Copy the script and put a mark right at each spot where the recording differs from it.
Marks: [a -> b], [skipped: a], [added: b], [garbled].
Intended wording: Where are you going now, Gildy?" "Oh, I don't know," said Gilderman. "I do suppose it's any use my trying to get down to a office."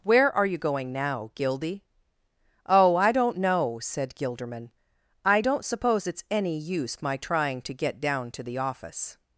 Where are you going now, Gildy?" "Oh, I don't know," said Gilderman. "I [do -> don't] suppose it's any use my trying to get down to [a -> the] office."